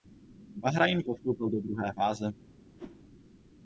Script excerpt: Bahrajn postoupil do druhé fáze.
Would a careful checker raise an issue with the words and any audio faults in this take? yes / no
yes